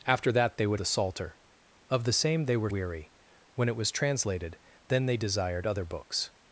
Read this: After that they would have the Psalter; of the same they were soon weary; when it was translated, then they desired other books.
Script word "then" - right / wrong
right